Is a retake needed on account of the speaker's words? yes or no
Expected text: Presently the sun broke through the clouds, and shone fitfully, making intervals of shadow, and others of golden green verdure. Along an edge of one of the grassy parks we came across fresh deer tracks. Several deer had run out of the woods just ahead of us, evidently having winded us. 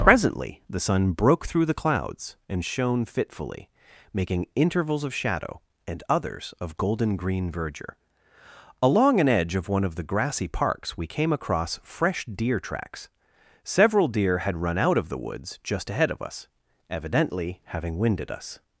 no